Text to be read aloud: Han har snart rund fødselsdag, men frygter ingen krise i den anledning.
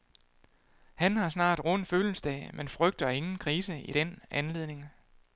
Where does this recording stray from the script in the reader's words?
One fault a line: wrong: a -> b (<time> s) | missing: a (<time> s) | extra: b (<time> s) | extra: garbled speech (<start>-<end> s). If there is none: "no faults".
no faults